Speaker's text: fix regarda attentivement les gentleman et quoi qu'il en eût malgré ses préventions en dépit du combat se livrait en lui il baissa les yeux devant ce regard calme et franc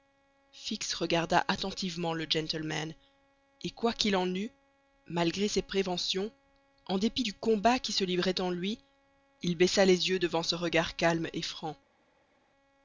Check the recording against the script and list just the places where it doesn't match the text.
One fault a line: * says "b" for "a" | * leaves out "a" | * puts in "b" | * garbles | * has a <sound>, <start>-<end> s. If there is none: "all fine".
* says "le" for "les"
* puts in "qui"